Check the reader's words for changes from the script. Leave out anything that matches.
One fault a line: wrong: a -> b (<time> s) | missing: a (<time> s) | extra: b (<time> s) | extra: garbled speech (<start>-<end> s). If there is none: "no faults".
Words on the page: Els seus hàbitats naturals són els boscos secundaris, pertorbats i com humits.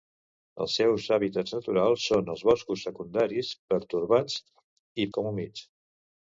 no faults